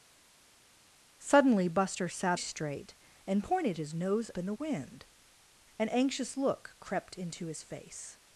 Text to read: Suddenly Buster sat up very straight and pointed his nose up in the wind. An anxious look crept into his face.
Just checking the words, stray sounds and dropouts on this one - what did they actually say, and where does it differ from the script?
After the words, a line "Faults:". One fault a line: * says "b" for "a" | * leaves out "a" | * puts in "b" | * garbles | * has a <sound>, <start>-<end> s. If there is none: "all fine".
Suddenly Buster sat straight and pointed his nose in the wind. An anxious look crept into his face.
Faults:
* leaves out "up very"
* leaves out "up"